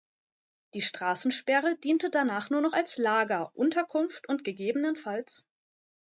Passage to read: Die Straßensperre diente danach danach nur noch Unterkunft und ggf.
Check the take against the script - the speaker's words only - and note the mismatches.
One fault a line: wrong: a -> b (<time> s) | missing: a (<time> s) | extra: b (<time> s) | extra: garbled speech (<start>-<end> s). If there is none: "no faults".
missing: danach (2.5 s)
extra: als Lager (2.7 s)